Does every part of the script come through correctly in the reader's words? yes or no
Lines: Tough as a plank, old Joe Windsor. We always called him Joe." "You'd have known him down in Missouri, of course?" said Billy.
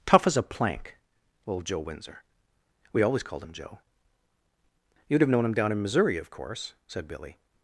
yes